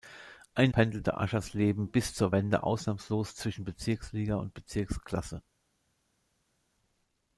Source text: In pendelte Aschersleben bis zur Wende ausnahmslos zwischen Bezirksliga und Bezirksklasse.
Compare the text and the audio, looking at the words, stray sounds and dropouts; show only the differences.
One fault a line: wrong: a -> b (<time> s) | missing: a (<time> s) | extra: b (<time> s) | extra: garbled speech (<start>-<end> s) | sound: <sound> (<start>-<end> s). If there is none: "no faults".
no faults